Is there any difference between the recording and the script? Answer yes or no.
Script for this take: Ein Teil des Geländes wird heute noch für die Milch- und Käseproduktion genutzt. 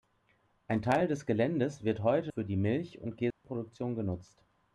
yes